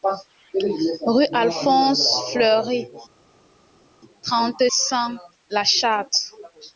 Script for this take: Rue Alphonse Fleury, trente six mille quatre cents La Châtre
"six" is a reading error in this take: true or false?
true